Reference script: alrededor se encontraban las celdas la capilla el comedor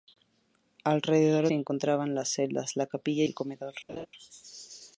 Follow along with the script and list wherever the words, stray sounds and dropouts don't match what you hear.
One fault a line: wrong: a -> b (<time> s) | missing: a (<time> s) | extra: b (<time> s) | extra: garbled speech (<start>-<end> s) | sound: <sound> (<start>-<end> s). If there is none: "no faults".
sound: laugh (3.9-4.1 s)